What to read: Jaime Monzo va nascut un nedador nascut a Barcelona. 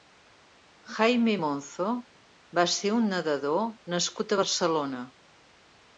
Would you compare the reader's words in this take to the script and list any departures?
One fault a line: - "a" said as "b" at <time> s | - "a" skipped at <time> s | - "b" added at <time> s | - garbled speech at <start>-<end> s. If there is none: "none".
- "nascut" said as "ser" at 2.7 s